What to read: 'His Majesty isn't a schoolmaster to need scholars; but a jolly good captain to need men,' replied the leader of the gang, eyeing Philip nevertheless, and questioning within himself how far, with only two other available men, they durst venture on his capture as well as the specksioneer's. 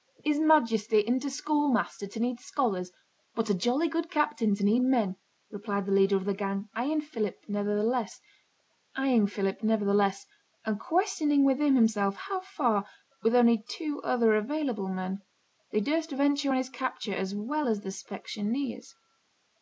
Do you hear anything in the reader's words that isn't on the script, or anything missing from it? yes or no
no